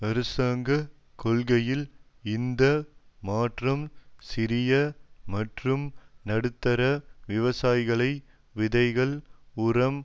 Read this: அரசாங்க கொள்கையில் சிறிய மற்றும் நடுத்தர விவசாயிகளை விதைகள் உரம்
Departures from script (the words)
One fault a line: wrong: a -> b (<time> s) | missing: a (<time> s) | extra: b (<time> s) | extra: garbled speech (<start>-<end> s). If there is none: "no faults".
extra: இந்த மாற்றம் (2.2 s)